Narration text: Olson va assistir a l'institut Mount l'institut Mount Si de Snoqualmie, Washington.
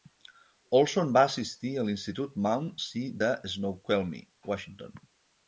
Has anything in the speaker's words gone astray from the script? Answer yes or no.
yes